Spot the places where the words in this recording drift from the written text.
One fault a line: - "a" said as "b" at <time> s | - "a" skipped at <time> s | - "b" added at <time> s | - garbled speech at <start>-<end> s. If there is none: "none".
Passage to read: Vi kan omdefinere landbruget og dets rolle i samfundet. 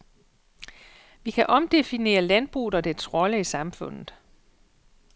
none